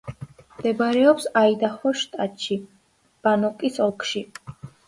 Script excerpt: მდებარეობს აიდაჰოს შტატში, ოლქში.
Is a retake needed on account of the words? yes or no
yes